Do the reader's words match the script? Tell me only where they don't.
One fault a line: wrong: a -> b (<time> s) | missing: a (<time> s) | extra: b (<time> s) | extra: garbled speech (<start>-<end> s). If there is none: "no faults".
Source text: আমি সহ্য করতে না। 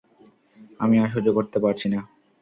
extra: আর (1.0 s)
extra: পারছি (1.6 s)